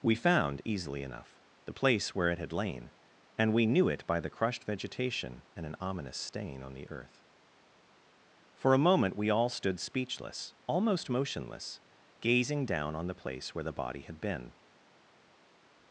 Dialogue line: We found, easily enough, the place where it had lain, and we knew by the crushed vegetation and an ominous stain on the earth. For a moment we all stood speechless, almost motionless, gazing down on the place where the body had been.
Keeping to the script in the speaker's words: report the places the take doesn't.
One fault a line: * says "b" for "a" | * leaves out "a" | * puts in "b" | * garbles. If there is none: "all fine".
* puts in "it"